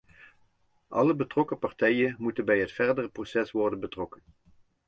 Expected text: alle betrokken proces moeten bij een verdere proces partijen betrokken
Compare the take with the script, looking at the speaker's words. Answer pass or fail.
fail